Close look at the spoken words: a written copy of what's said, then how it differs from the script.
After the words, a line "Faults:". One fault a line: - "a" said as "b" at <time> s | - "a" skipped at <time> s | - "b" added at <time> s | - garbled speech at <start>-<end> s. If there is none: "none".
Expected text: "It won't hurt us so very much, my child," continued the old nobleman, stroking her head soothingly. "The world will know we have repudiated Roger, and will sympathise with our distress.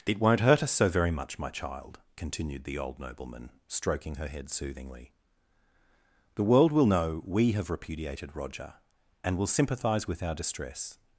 "It won't hurt us so very much, my child," continued the old nobleman, stroking her head soothingly. "The world will know we have repudiated Roger, and will sympathise with our distress.
Faults:
none